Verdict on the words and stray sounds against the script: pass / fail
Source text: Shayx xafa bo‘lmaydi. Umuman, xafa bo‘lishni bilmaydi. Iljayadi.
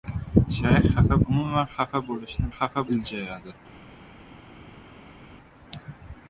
fail